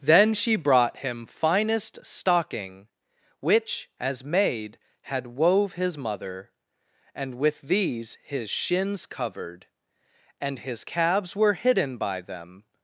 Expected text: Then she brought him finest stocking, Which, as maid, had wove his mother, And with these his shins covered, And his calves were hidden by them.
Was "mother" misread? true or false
false